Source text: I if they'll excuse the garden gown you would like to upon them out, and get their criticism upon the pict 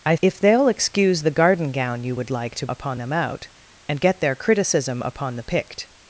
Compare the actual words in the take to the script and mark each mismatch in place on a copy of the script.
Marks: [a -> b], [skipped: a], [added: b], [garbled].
I if they'll excuse the garden gown you would like to upon them out, and get their criticism upon the pict